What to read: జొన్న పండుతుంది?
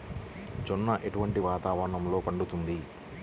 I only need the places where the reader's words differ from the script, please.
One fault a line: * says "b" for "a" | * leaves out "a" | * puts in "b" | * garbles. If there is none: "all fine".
* puts in "ఎటువంటి వాతావరణంలో"